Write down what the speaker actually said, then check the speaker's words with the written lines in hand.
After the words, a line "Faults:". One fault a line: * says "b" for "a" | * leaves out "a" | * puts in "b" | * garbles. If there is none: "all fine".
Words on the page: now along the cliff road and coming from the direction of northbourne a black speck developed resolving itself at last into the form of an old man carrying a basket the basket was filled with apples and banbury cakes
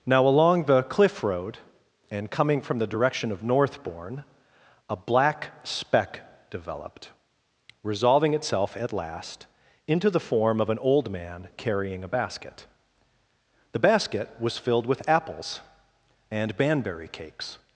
now along the cliff road and coming from the direction of northbourne a black speck developed resolving itself at last into the form of an old man carrying a basket the basket was filled with apples and banbury cakes
Faults:
all fine